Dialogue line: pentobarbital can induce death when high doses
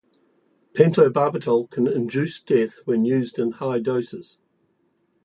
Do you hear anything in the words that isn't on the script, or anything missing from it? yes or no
yes